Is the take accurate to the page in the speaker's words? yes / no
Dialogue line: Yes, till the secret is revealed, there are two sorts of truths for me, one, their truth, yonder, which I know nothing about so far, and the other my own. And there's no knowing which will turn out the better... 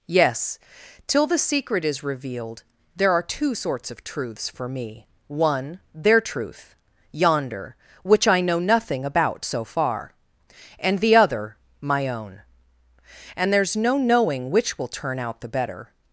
yes